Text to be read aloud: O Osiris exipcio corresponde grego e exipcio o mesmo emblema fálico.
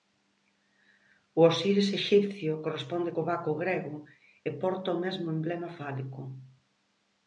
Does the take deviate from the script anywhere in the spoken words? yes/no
yes